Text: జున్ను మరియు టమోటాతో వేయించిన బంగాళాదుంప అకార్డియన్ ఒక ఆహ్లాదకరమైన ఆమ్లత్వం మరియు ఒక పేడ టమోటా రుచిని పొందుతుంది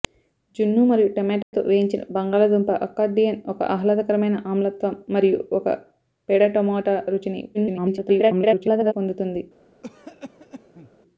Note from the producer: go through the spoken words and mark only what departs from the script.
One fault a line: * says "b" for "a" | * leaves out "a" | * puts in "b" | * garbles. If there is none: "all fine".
* garbles